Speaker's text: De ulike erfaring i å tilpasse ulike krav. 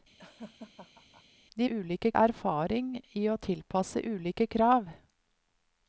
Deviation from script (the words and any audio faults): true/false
true